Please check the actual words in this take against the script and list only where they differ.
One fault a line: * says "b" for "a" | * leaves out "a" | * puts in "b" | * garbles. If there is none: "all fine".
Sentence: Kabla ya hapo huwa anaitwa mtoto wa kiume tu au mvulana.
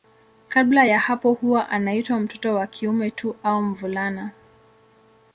all fine